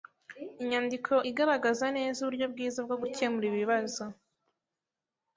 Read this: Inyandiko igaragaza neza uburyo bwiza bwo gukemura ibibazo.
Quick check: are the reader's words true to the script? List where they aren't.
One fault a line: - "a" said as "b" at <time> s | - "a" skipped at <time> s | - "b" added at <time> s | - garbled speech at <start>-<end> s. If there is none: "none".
none